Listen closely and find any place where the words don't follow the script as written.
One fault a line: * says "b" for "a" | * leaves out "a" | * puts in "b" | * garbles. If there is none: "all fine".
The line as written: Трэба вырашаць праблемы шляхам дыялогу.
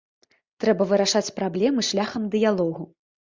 all fine